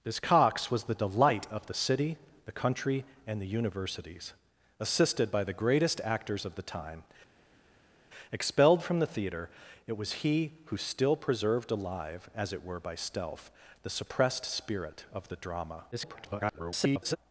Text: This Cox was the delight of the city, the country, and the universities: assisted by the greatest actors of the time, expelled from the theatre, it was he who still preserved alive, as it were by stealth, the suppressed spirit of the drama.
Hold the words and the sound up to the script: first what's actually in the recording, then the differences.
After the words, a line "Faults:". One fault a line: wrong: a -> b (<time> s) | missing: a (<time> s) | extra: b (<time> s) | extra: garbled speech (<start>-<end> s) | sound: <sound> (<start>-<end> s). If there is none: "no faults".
This Cox was the delight of the city, the country, and the universities: assisted by the greatest actors of the time, expelled from the theatre, it was he who still preserved alive, as it were by stealth, the suppressed spirit of the drama. [garbled]
Faults:
extra: garbled speech (15.9-17.2 s)